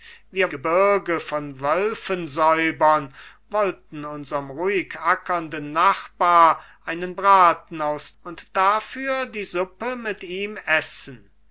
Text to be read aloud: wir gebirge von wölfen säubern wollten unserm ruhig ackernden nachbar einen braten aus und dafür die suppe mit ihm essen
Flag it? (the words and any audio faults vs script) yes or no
no